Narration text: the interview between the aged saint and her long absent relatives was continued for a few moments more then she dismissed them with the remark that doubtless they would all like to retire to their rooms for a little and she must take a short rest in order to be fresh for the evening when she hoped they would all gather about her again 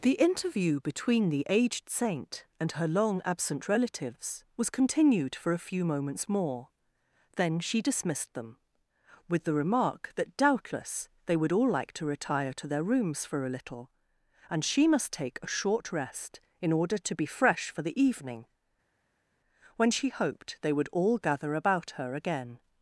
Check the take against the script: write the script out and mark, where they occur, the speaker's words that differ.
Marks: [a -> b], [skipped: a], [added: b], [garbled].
the interview between the aged saint and her long absent relatives was continued for a few moments more then she dismissed them with the remark that doubtless they would all like to retire to their rooms for a little and she must take a short rest in order to be fresh for the evening when she hoped they would all gather about her again